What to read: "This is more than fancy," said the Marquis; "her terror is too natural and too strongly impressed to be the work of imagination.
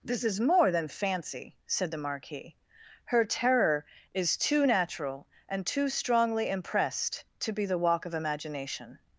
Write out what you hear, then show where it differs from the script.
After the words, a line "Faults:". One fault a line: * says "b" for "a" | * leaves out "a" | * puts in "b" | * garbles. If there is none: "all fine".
"This is more than fancy," said the Marquis; "her terror is too natural and too strongly impressed to be the walk of imagination.
Faults:
* says "walk" for "work"